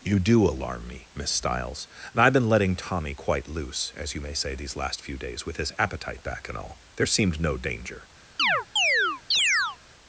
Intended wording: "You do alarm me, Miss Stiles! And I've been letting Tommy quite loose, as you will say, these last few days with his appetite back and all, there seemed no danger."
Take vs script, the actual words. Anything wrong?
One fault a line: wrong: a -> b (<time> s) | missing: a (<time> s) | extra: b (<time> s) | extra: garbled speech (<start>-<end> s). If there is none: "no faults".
wrong: will -> may (4.2 s)